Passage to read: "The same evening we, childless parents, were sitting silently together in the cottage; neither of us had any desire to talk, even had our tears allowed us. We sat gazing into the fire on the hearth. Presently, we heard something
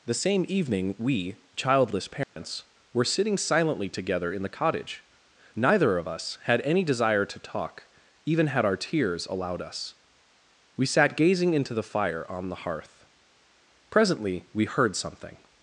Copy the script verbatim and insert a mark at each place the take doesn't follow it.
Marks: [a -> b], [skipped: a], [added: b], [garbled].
"The same evening we, childless parents, were sitting silently together in the cottage; neither of us had any desire to talk, even had our tears allowed us. We sat gazing into the fire on the hearth. Presently, we heard something